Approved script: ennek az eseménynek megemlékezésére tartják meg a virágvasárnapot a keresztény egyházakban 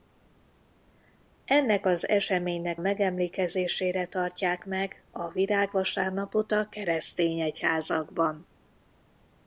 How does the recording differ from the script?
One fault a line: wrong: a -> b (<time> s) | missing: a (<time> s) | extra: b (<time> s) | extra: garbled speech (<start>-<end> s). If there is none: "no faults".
no faults